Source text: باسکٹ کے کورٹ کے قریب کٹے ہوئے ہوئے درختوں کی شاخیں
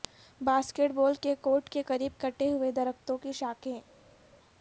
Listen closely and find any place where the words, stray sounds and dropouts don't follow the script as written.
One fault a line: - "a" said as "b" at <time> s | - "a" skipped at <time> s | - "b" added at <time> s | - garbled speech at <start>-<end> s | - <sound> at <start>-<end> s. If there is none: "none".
- "بال" added at 0.9 s
- "ہوئے" skipped at 2.7 s